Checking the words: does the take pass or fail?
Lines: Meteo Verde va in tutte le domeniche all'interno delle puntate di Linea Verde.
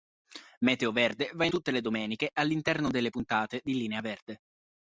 pass